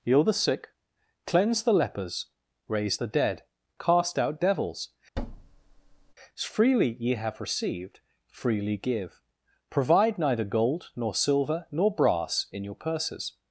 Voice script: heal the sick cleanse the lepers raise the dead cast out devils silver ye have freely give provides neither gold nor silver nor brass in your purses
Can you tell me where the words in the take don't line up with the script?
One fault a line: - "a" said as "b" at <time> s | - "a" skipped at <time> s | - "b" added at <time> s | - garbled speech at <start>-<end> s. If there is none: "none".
- "silver" said as "freely" at 6.3 s
- "received" added at 7.4 s
- "provides" said as "provide" at 9.7 s